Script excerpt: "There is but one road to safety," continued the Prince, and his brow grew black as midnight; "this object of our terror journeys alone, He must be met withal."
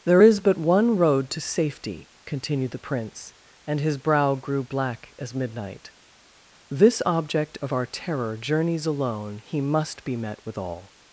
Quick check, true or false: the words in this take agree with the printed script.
true